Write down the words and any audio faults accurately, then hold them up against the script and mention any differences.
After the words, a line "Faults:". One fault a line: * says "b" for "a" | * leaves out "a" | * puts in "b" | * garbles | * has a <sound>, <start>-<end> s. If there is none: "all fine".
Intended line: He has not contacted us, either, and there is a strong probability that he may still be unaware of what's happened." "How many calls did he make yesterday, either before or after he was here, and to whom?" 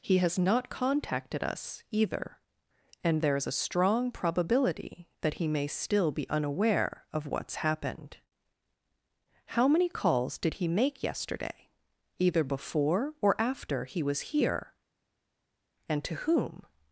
He has not contacted us, either, and there is a strong probability that he may still be unaware of what's happened." "How many calls did he make yesterday, either before or after he was here, and to whom?"
Faults:
all fine